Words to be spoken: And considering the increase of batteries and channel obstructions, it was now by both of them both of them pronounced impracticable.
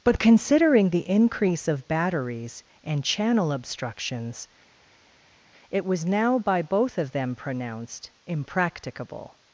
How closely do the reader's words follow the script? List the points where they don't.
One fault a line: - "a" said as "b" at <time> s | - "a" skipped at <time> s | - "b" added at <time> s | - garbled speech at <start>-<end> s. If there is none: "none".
- "And" said as "But" at 0.0 s
- "both of them" skipped at 7.4 s